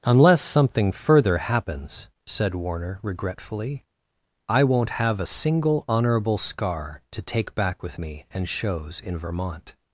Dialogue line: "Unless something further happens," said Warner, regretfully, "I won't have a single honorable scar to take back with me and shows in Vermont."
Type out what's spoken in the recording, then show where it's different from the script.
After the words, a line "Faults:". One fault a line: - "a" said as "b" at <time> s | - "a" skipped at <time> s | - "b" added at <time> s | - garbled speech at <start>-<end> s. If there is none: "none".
"Unless something further happens," said Warner, regretfully, "I won't have a single honorable scar to take back with me and shows in Vermont."
Faults:
none